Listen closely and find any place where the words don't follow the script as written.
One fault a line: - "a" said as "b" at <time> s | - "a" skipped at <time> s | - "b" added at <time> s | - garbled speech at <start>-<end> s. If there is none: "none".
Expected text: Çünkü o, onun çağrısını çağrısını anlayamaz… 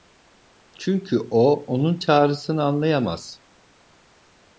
- "çağrısını" skipped at 2.6 s